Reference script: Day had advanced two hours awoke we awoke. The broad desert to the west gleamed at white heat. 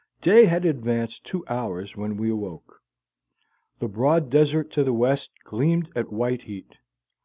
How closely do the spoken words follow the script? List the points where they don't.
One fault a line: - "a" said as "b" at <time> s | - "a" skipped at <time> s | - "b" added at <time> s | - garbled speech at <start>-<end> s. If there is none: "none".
- "awoke" said as "when" at 1.9 s